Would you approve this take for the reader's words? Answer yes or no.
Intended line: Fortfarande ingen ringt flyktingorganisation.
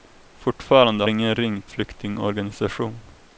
yes